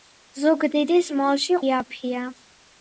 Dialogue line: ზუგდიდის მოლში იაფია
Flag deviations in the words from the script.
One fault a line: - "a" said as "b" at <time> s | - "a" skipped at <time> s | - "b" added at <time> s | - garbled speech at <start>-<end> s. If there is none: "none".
none